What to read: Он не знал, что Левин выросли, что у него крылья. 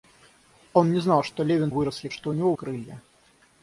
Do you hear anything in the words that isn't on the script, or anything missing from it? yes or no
no